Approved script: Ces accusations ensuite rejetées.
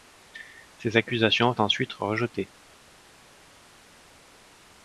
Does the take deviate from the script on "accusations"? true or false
false